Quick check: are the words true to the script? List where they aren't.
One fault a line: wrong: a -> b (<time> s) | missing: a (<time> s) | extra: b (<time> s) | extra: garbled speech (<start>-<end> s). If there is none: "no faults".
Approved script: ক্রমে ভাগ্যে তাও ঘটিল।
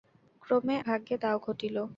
no faults